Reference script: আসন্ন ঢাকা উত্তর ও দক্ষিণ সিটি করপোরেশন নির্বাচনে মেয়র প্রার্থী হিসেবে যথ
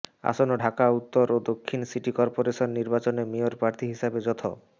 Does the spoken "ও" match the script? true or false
true